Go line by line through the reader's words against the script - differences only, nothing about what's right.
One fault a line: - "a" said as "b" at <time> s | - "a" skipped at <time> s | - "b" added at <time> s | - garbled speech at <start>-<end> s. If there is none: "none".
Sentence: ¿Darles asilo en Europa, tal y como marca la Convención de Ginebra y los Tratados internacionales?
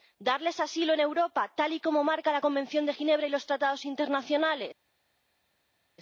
none